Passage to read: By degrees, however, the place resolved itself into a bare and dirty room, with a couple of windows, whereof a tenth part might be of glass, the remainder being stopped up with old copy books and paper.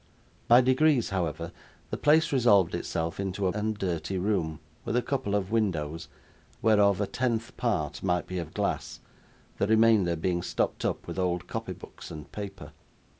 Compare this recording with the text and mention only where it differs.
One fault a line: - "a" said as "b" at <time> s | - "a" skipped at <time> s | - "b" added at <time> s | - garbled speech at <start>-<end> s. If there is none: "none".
- "bare" skipped at 3.5 s